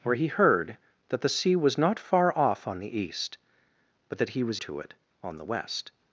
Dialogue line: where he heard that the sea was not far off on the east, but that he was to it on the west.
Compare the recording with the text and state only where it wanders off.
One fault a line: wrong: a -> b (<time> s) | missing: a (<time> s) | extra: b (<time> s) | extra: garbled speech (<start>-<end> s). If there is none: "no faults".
no faults